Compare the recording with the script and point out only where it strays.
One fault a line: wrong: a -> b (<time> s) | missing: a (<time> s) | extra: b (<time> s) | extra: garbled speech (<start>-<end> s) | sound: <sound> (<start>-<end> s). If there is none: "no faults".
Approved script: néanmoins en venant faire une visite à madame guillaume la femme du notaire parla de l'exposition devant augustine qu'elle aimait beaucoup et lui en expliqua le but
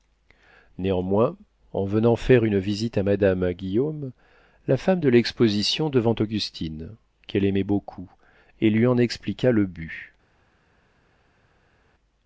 missing: du notaire parla (5.0 s)